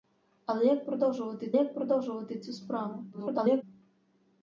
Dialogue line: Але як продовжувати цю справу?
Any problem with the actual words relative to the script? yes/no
yes